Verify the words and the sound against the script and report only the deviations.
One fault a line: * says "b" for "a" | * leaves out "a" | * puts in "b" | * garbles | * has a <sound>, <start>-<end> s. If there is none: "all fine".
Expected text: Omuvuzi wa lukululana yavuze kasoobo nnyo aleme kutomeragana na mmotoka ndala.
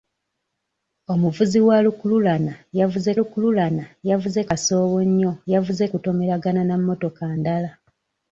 * puts in "lukululana yavuze"
* says "yavuze" for "aleme"